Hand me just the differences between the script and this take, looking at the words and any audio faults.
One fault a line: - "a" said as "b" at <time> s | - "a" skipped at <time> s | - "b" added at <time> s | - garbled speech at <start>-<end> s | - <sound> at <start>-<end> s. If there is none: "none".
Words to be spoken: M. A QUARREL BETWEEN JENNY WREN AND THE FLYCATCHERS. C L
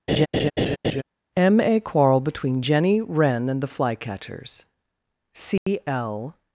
- laugh at 0.1-1.0 s
- dropout at 5.6-5.7 s